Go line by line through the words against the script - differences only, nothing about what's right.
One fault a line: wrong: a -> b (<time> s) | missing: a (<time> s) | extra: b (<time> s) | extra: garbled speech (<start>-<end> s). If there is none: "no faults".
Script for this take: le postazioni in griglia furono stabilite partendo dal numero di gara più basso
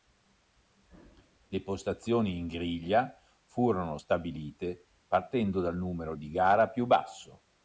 no faults